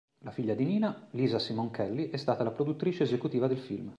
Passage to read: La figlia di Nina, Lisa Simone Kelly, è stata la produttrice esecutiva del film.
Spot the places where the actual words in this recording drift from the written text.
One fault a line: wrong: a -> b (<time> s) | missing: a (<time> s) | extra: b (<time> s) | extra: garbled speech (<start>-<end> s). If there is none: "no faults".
no faults